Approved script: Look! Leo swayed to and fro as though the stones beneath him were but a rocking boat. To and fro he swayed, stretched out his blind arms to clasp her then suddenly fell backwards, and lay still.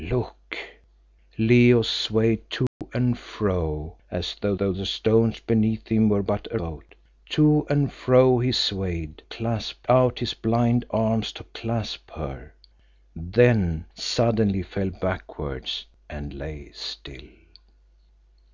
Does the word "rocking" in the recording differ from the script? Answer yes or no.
yes